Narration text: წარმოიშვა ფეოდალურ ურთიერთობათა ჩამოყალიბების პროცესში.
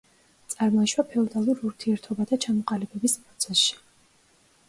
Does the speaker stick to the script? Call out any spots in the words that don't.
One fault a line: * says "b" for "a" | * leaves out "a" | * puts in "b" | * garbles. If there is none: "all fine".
all fine